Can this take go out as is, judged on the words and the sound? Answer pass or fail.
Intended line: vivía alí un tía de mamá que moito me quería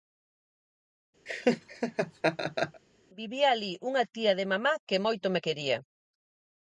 fail